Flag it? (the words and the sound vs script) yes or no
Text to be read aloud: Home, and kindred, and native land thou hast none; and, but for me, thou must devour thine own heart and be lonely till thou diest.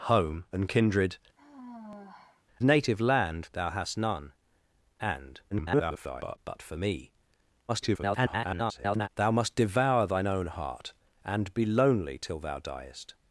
yes